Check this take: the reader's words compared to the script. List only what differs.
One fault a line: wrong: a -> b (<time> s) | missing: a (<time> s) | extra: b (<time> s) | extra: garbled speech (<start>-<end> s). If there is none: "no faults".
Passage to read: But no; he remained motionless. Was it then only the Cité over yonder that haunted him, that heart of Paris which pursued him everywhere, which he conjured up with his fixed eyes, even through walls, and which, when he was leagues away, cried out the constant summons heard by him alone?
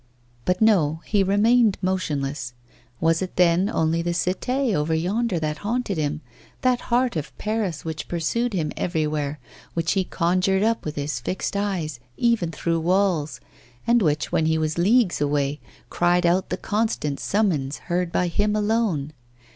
no faults